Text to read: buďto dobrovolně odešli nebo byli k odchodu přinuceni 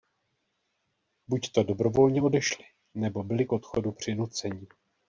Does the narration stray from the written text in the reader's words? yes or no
no